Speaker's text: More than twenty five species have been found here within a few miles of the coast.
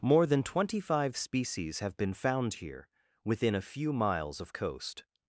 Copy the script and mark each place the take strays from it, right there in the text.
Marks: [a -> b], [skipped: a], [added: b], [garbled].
More than twenty five species have been found here within a few miles of [skipped: the] coast.